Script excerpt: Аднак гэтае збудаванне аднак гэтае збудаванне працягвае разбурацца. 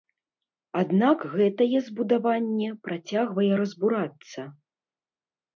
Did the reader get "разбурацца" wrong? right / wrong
right